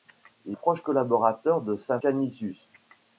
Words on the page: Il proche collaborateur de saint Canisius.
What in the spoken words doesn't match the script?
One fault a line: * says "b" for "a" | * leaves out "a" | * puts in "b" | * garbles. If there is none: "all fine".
all fine